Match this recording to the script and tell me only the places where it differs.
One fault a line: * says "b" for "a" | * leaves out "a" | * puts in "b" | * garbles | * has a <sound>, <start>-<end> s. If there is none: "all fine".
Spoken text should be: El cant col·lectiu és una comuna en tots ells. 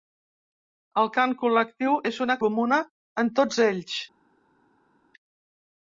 all fine